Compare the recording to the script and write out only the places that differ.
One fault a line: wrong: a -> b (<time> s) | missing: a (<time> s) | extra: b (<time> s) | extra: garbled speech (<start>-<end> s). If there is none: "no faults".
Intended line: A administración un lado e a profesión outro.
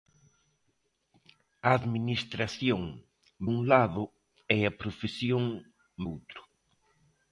no faults